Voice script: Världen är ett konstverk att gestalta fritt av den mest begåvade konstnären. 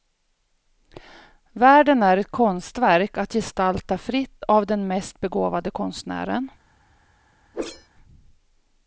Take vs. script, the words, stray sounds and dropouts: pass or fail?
fail